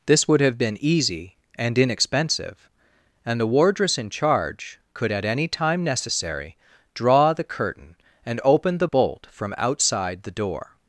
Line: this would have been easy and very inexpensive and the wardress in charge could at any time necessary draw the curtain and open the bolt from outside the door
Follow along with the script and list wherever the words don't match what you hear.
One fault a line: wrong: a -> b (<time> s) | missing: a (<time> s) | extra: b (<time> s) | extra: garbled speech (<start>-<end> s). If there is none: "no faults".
missing: very (1.8 s)